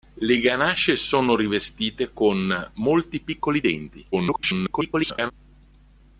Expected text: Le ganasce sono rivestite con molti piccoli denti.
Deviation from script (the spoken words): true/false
true